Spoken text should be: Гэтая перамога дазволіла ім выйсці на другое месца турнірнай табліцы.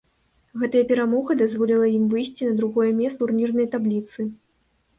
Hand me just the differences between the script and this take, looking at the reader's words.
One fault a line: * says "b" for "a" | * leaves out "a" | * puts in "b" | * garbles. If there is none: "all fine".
all fine